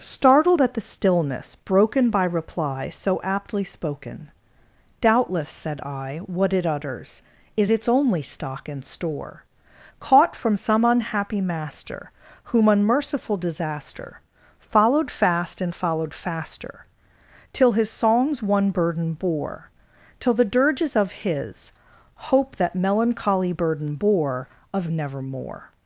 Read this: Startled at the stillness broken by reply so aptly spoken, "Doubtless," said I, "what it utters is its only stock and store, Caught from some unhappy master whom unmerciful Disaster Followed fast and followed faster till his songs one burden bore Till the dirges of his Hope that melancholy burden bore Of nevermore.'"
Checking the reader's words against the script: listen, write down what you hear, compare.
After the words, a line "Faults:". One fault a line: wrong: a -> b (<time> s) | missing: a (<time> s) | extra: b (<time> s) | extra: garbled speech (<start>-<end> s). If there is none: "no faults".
Startled at the stillness broken by reply so aptly spoken, "Doubtless," said I, "what it utters is its only stock and store, Caught from some unhappy master whom unmerciful Disaster Followed fast and followed faster till his songs one burden bore Till the dirges of his Hope that melancholy burden bore Of nevermore.'"
Faults:
no faults